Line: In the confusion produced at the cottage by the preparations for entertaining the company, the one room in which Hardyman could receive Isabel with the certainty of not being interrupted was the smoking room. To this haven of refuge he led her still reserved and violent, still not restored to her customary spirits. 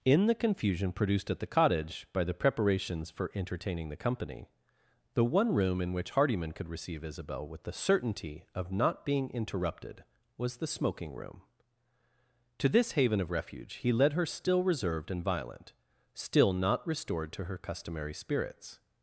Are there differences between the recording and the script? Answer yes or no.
no